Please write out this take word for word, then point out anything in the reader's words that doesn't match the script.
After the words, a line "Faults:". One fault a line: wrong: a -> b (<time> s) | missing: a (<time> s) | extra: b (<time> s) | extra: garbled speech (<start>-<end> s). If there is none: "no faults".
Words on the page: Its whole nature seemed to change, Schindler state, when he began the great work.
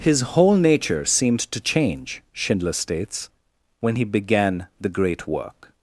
His whole nature seemed to change, Schindler states, when he began the great work.
Faults:
wrong: Its -> His (0.0 s)
wrong: state -> states (2.7 s)